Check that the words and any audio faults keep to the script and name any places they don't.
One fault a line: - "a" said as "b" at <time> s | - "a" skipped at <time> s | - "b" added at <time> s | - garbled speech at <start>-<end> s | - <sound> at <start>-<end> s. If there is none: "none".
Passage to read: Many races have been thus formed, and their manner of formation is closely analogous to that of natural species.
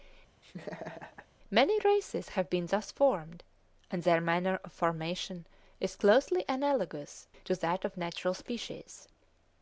- laugh at 0.4-1.3 s